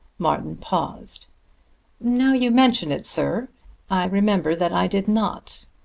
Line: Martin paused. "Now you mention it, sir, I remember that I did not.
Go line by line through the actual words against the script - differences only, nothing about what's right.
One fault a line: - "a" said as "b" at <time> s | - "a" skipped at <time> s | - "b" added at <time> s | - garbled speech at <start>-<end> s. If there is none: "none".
none